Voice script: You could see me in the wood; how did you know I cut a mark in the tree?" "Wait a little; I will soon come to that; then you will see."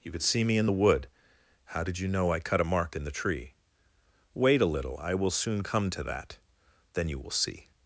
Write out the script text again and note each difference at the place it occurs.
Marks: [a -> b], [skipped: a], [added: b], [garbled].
You could see me in the wood; how did you know I cut a mark in the tree?" "Wait a little; I will soon come to that; then you will see."